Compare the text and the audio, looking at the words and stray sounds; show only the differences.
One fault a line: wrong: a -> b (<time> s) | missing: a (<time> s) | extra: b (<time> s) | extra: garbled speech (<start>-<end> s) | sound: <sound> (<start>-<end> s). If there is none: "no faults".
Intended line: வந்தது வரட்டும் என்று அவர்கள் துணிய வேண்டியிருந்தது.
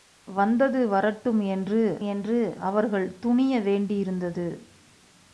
extra: என்று (2.0 s)